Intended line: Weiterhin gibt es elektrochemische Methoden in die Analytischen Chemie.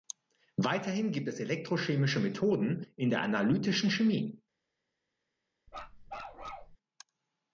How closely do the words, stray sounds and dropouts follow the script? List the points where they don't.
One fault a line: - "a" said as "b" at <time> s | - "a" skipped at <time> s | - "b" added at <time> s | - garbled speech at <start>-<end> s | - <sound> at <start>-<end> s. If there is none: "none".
- "die" said as "der" at 3.1 s
- bark at 5.7-6.8 s